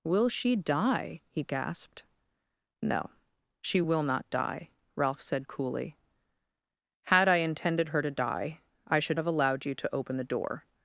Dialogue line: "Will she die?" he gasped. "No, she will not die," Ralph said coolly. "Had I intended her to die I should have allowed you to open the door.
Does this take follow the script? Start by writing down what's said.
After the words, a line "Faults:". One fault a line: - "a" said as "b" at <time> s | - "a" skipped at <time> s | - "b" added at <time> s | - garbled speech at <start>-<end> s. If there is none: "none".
"Will she die?" he gasped. "No, she will not die," Ralph said coolly. "Had I intended her to die I should have allowed you to open the door.
Faults:
none